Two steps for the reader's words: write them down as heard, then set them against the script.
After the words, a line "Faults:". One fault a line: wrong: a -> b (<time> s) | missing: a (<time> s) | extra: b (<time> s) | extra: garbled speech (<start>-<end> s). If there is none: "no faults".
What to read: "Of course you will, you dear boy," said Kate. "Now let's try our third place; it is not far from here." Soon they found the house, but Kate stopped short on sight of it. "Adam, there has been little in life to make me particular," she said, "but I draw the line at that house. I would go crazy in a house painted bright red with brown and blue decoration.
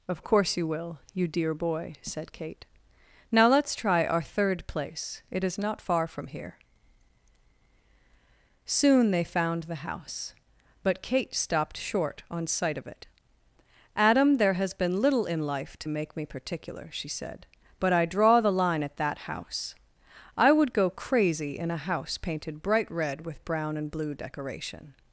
"Of course you will, you dear boy," said Kate. "Now let's try our third place; it is not far from here." Soon they found the house, but Kate stopped short on sight of it. "Adam, there has been little in life to make me particular," she said, "but I draw the line at that house. I would go crazy in a house painted bright red with brown and blue decoration.
Faults:
no faults